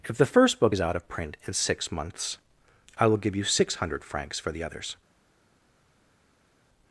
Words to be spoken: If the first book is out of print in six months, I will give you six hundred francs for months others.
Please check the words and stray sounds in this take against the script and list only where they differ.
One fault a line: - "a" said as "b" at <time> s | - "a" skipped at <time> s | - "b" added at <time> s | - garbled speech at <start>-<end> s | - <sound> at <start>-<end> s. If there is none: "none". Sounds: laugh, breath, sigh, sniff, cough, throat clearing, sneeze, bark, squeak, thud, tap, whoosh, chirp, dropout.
- "months" said as "the" at 4.5 s